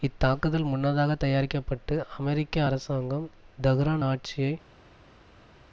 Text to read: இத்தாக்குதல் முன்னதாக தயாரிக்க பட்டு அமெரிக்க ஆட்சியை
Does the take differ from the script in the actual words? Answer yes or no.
yes